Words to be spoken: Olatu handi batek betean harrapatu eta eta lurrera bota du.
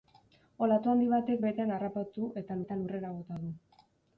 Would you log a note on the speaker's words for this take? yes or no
no